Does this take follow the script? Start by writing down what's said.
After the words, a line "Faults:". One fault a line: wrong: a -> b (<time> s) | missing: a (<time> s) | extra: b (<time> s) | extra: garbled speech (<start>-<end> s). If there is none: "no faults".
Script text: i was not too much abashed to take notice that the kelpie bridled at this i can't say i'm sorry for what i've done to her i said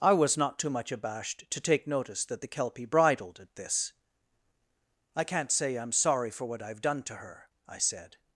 i was not too much abashed to take notice that the kelpie bridled at this i can't say i'm sorry for what i've done to her i said
Faults:
no faults